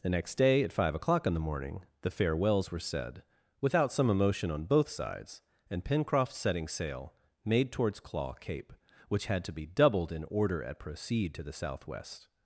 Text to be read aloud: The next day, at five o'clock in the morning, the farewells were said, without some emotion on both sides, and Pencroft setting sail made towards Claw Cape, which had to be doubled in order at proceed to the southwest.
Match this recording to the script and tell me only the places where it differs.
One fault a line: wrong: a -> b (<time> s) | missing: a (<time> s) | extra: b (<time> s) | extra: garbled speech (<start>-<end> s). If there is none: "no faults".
no faults